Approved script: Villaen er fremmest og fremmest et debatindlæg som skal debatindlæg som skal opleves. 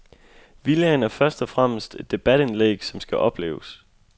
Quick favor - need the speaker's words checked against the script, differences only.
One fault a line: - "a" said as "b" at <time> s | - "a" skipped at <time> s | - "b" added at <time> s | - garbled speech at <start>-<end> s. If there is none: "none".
- "fremmest" said as "først" at 1.1 s
- "debatindlæg som skal" skipped at 3.2 s